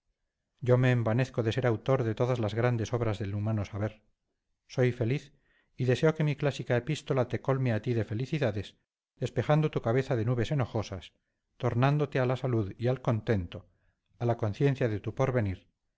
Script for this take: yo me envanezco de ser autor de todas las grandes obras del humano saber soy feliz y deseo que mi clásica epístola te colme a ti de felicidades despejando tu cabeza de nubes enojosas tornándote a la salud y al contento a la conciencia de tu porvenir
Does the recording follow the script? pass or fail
pass